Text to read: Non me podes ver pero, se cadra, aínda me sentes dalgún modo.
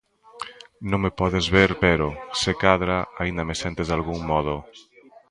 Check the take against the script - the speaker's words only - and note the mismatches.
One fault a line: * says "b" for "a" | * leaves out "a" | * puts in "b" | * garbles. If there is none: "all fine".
all fine